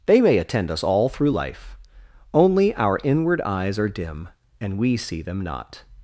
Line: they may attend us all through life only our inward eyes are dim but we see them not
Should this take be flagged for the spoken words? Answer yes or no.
yes